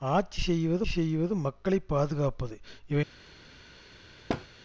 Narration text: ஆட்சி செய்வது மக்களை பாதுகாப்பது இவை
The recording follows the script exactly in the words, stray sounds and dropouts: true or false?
false